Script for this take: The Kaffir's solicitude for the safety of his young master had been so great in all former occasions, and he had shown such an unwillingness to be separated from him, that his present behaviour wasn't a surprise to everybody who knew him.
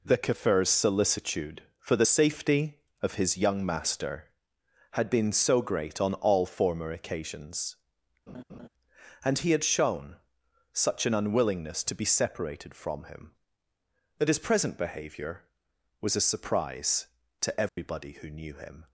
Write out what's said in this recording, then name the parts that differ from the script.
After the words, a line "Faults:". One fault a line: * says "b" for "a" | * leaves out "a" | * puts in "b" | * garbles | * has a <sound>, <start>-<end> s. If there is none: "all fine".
The Kaffir's solicitude for the safety of his young master had been so great on all former occasions, and he had shown such an unwillingness to be separated from him, that his present behaviour was a surprise to everybody who knew him.
Faults:
* says "on" for "in"
* has a laugh, 8.3-8.7 s
* says "was" for "wasn't"
* has a dropout, 17.7-17.8 s